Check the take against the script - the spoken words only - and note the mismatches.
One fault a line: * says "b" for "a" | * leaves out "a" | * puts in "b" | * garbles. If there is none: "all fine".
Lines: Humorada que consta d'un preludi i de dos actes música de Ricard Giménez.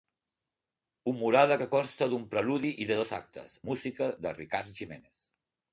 all fine